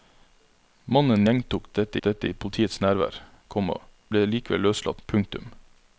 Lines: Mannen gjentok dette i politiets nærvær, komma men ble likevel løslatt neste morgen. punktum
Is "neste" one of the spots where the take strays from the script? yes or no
yes